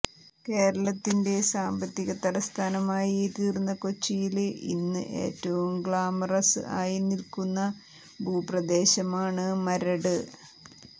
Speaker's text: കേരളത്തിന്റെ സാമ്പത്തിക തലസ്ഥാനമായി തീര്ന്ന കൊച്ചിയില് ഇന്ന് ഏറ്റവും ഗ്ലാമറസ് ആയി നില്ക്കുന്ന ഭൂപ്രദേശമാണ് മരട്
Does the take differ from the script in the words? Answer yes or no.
no